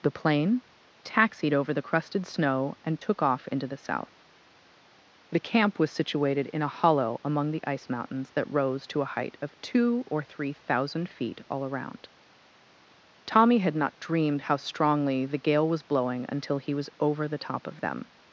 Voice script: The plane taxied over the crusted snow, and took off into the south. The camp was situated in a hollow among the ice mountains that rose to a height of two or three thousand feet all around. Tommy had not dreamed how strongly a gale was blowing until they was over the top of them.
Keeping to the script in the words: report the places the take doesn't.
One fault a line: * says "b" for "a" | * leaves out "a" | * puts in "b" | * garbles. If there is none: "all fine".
* says "the" for "a"
* says "he" for "they"